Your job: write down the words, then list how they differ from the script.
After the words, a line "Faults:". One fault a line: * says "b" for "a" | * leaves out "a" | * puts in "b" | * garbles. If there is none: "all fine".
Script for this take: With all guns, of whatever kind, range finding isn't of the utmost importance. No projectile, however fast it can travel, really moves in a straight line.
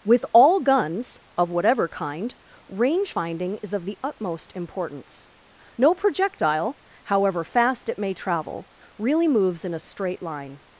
With all guns, of whatever kind, range finding is of the utmost importance. No projectile, however fast it may travel, really moves in a straight line.
Faults:
* says "is" for "isn't"
* says "may" for "can"